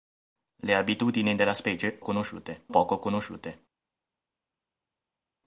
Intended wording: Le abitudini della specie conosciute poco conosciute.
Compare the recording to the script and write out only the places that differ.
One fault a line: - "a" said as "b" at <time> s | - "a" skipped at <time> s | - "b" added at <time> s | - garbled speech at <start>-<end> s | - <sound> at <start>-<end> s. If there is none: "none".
none